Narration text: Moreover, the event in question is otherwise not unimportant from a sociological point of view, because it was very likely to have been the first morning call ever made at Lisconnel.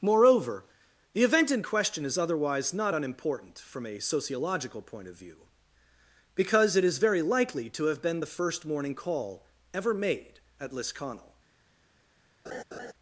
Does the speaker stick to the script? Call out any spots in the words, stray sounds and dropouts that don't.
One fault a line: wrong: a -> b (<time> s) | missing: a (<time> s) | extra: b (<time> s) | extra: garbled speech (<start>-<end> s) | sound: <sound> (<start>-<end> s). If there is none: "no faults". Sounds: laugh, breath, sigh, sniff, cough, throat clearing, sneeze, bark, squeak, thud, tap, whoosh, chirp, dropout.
wrong: was -> is (6.8 s)
sound: laugh (12.5-12.9 s)